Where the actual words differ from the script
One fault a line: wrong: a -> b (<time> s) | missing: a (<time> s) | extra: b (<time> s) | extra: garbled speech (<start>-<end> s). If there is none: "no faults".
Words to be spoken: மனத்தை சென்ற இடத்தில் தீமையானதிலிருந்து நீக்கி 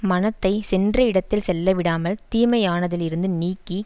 extra: செல்லவிடாமல் (1.4 s)